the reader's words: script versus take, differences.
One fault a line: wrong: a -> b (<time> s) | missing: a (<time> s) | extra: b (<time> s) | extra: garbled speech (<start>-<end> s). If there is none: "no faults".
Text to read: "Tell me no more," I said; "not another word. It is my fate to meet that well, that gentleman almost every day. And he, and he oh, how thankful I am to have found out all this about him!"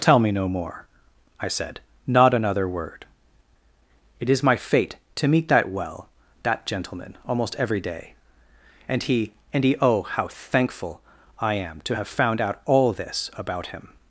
no faults